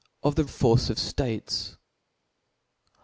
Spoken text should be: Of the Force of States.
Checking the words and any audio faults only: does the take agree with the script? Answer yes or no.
yes